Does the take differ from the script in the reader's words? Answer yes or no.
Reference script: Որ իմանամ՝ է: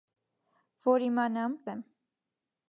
no